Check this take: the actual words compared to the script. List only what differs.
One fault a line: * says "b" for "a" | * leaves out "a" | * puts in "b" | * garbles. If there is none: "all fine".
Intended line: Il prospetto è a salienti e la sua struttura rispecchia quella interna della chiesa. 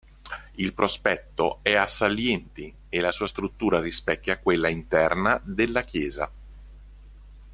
all fine